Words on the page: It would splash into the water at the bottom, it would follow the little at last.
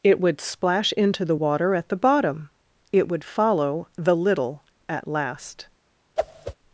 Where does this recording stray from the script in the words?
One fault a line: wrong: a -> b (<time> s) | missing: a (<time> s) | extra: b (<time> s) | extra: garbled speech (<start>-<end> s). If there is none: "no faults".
no faults